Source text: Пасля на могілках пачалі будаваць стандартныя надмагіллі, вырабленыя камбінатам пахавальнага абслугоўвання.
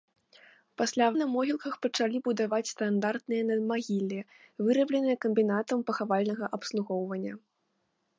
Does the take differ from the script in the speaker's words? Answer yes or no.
no